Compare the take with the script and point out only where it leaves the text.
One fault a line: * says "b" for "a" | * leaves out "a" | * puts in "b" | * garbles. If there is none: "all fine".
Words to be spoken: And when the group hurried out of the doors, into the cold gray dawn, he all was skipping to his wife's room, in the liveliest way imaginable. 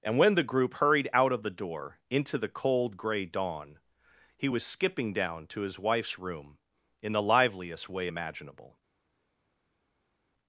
* says "door" for "doors"
* leaves out "all"
* puts in "down"